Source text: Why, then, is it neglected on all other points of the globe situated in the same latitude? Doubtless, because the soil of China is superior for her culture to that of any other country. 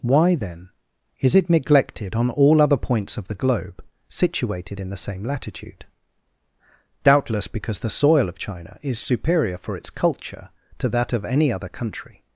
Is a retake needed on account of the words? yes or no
yes